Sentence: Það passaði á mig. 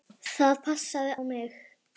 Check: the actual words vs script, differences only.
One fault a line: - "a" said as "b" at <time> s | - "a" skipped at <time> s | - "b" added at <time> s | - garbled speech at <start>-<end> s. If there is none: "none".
none